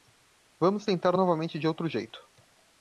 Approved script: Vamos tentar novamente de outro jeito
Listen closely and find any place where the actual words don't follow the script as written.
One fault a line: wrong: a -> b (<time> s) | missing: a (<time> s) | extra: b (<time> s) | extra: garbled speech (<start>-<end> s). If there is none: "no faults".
no faults